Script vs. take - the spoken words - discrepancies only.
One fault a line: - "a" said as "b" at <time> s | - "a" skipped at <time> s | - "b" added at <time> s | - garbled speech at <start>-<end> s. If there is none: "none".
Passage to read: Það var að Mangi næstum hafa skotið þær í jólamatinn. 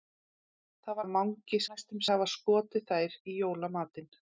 none